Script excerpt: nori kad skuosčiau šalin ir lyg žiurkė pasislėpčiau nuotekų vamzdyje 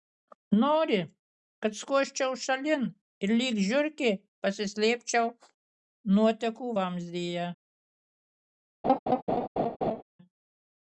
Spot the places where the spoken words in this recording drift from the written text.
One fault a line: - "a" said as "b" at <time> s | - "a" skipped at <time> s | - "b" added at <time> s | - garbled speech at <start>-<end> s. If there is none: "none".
none